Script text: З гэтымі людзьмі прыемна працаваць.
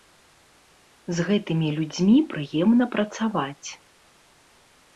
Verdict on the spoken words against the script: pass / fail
pass